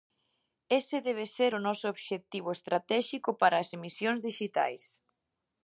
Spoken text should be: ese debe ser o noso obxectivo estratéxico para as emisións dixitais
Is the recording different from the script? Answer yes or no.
no